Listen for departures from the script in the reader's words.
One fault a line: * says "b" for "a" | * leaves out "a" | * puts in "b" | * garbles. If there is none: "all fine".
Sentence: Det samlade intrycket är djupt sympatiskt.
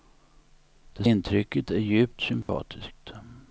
* leaves out "samlade"